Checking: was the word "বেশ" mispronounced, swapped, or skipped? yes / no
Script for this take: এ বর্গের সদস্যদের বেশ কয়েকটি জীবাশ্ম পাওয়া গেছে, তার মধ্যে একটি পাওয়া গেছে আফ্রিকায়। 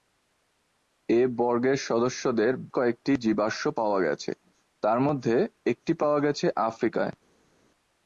yes